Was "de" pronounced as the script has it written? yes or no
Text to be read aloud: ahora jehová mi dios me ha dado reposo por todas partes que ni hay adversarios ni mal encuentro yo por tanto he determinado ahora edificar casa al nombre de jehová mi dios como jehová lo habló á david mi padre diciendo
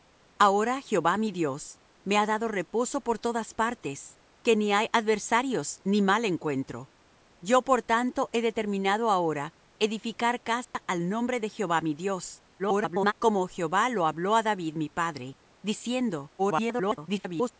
yes